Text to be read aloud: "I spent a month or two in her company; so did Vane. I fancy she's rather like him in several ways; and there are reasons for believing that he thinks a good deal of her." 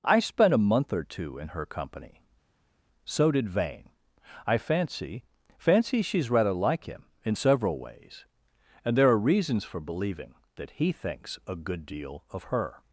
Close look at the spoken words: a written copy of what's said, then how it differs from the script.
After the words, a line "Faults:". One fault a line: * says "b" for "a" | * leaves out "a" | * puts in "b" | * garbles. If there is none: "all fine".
"I spent a month or two in her company; so did Vane. I fancy fancy she's rather like him in several ways; and there are reasons for believing that he thinks a good deal of her."
Faults:
* puts in "fancy"